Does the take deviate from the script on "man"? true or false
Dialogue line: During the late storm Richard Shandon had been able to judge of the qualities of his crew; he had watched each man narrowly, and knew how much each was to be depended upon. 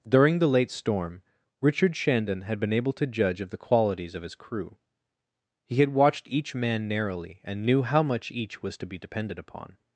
false